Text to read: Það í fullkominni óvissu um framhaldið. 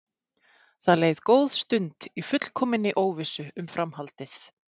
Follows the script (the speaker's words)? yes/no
no